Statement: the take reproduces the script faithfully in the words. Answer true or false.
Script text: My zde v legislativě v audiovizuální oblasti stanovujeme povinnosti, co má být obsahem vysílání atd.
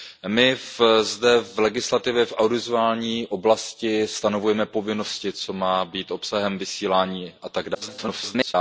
false